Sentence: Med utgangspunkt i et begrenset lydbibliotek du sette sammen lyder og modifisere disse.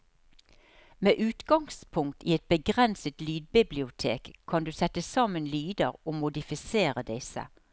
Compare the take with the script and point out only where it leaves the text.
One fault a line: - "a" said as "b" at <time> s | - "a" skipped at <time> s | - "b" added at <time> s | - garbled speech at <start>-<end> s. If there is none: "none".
- "kan" added at 4.5 s